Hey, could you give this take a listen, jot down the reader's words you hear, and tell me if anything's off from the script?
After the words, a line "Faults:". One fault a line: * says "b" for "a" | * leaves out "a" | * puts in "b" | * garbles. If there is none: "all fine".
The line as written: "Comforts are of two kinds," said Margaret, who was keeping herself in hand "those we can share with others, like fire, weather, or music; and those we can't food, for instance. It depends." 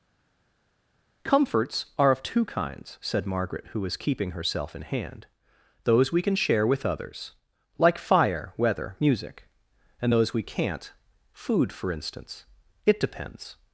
"Comforts are of two kinds," said Margaret, who was keeping herself in hand "those we can share with others, like fire, weather, music; and those we can't food, for instance. It depends."
Faults:
* leaves out "or"